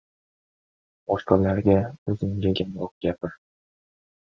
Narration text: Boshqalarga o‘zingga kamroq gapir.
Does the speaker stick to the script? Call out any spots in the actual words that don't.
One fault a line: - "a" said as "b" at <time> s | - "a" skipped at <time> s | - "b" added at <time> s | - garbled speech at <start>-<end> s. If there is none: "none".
none